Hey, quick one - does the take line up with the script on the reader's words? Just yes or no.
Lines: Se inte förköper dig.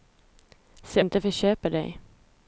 yes